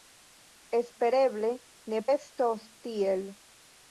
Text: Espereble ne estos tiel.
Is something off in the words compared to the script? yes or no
no